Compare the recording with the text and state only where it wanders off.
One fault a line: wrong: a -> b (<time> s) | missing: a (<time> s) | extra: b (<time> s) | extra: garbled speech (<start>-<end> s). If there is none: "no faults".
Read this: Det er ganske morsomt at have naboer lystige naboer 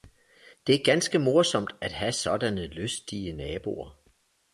wrong: naboer -> sådanne (2.1 s)